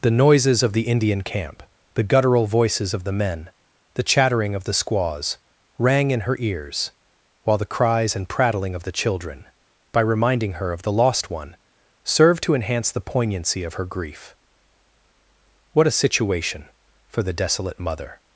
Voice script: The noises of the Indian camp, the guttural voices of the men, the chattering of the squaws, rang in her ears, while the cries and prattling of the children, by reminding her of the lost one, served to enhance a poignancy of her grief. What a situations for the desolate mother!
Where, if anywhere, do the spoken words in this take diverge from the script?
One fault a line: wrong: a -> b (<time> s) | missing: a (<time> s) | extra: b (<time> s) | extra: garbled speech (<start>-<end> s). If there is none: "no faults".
wrong: a -> the (12.9 s)
wrong: situations -> situation (15.9 s)